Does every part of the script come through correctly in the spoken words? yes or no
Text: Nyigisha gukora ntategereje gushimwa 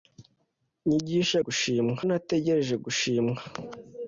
no